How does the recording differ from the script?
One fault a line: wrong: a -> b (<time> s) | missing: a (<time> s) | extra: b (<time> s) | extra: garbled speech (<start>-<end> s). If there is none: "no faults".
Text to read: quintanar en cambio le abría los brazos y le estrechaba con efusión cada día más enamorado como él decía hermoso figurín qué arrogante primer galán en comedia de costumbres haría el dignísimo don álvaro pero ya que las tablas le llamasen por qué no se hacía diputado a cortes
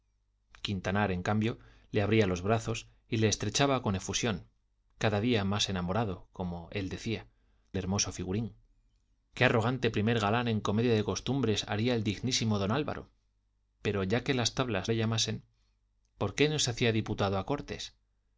no faults